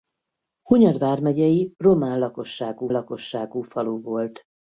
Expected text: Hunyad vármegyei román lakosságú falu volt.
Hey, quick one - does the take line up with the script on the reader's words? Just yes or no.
no